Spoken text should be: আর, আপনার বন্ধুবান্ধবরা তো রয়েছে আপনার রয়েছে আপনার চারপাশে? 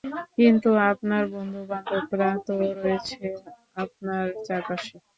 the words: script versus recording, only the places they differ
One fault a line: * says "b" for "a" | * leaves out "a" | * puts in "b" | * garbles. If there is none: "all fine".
* says "কিন্তু" for "আর"
* leaves out "রয়েছে আপনার"